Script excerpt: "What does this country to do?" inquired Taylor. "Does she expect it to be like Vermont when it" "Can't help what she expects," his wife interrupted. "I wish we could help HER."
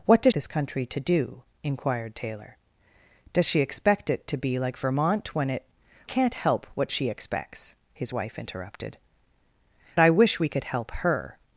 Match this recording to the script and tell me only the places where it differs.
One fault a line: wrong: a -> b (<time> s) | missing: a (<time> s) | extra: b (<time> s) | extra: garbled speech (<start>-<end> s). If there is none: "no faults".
no faults